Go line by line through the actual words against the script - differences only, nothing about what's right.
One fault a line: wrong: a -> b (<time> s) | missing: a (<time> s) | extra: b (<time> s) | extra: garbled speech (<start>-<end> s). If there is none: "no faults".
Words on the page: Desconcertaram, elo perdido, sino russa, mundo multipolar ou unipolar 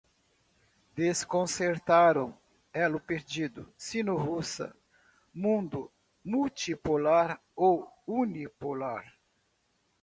no faults